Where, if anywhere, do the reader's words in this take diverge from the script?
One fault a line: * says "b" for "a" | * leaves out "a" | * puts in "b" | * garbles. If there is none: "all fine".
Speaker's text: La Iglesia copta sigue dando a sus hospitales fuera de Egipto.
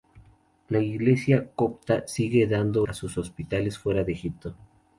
all fine